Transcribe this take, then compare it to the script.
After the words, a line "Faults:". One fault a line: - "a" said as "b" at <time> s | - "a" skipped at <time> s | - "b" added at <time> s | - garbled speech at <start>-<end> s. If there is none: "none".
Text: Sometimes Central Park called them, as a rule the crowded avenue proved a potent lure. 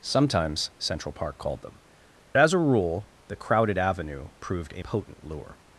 Sometimes Central Park called them, as a rule the crowded avenue proved a potent lure.
Faults:
none